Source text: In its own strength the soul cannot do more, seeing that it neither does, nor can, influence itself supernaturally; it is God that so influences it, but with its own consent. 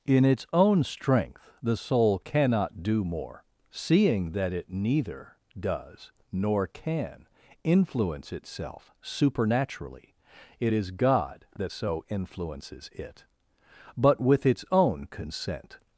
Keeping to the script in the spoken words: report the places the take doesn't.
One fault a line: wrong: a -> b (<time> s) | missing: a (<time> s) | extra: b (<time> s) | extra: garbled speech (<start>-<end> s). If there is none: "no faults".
no faults